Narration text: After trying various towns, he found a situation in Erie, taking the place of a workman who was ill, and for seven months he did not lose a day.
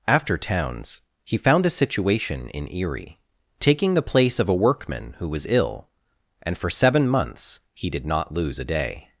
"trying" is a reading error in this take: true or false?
true